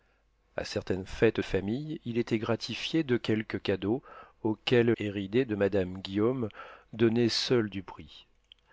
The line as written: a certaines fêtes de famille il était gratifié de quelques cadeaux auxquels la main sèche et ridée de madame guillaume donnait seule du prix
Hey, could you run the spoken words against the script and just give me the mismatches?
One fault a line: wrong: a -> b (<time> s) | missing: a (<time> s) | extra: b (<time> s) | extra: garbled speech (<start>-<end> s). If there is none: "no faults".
missing: de (1.4 s)
missing: la main sèche (4.9 s)